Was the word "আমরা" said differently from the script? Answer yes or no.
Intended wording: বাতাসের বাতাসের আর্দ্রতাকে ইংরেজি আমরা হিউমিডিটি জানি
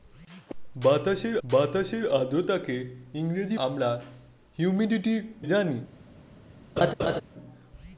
no